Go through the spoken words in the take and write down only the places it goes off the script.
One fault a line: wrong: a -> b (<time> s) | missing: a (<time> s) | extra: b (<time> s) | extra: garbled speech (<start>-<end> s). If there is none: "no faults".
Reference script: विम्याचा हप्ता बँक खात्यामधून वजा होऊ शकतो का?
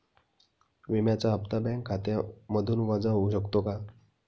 no faults